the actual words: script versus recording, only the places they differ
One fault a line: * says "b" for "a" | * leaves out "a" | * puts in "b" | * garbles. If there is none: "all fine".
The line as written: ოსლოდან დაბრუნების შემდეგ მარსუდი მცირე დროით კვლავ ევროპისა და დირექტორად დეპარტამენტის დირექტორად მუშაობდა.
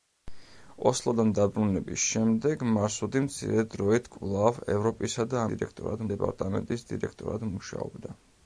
all fine